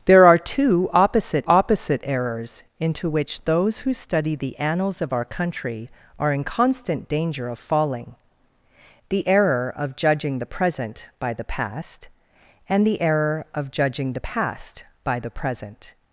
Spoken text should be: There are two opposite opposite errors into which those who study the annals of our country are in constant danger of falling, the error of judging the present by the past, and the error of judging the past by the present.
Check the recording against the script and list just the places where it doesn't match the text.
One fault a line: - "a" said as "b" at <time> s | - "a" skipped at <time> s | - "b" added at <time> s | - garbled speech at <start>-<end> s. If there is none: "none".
none